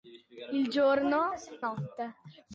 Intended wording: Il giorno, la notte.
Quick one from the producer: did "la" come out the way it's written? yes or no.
no